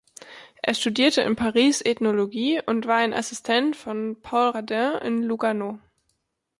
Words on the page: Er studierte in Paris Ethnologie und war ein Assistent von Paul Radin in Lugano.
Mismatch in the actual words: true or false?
false